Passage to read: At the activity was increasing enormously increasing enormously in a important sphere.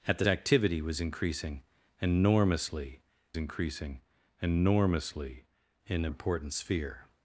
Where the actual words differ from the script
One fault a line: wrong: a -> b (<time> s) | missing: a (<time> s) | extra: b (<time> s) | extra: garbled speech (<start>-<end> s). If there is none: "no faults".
no faults